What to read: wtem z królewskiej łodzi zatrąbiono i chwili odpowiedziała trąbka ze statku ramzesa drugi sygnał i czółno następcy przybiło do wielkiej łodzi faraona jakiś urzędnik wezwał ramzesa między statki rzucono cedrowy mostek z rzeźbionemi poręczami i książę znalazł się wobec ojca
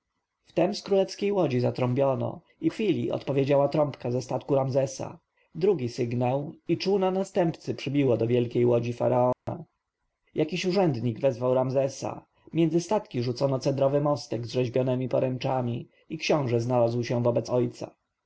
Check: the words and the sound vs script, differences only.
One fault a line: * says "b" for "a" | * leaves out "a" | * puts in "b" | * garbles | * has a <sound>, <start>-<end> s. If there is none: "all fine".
* has a dropout, 9.3-9.5 s